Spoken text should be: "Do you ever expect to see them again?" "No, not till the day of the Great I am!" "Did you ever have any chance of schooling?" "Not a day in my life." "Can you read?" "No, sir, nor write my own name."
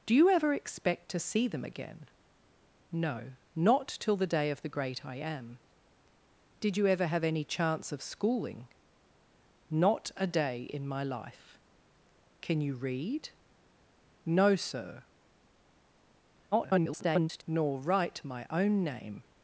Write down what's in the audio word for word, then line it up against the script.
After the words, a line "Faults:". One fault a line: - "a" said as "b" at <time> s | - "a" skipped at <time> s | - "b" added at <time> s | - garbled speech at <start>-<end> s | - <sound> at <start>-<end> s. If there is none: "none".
"Do you ever expect to see them again?" "No, not till the day of the Great I am!" "Did you ever have any chance of schooling?" "Not a day in my life." "Can you read?" "No, sir, [garbled] nor write my own name."
Faults:
- garbled speech at 16.5-17.4 s